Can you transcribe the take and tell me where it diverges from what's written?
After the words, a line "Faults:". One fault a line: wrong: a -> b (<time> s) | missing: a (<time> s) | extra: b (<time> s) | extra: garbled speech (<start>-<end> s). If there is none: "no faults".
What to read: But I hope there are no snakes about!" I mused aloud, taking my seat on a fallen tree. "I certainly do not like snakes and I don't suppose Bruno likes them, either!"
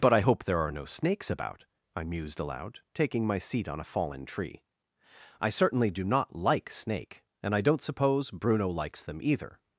But I hope there are no snakes about!" I mused aloud, taking my seat on a fallen tree. "I certainly do not like snake and I don't suppose Bruno likes them, either!"
Faults:
wrong: snakes -> snake (6.7 s)